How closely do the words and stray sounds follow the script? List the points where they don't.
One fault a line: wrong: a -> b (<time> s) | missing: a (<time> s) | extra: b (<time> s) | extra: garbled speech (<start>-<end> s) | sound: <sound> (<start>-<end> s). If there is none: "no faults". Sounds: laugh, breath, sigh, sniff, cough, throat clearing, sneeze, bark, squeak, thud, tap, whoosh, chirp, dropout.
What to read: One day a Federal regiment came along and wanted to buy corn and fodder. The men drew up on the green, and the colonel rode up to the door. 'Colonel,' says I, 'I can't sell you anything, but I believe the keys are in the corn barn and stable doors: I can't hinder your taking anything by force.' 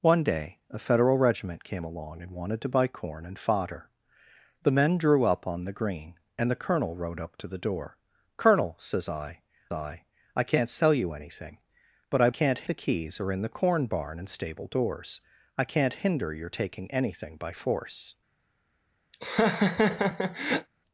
extra: I (10.4 s)
wrong: believe -> can't (12.3 s)
sound: laugh (19.1-20.7 s)